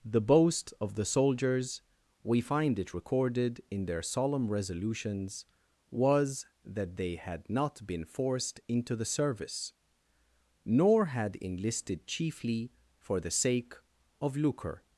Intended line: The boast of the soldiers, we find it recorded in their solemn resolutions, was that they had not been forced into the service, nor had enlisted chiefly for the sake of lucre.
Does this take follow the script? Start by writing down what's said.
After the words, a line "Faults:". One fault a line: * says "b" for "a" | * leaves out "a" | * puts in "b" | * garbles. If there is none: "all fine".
The boast of the soldiers, we find it recorded in their solemn resolutions, was that they had not been forced into the service, nor had enlisted chiefly for the sake of lucre.
Faults:
all fine